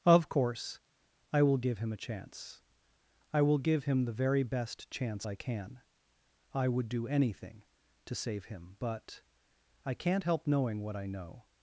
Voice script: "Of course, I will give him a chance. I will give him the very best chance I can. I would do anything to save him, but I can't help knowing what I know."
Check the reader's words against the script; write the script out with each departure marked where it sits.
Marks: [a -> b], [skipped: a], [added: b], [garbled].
"Of course, I will give him a chance. I will give him the very best chance I can. I would do anything to save him, but I can't help knowing what I know."